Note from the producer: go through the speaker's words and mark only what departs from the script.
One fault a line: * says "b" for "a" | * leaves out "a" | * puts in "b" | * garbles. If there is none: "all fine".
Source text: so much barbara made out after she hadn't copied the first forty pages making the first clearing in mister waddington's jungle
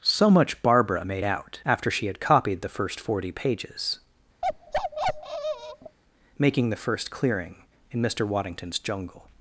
* says "had" for "hadn't"